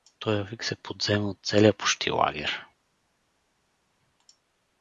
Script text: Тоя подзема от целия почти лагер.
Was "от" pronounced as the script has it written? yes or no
yes